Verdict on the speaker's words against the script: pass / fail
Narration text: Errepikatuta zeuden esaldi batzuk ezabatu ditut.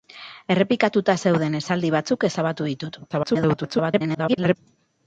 fail